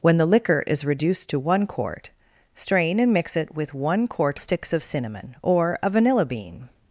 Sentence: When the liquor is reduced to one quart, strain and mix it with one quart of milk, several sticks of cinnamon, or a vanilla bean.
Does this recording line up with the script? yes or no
no